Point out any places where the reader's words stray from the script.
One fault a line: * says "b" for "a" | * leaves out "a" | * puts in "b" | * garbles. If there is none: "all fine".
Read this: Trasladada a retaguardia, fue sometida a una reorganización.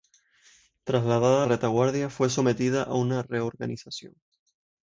all fine